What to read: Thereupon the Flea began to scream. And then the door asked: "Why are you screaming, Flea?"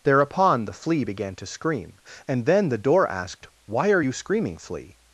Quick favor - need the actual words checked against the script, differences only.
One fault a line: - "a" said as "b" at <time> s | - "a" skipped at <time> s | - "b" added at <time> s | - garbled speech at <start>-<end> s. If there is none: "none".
none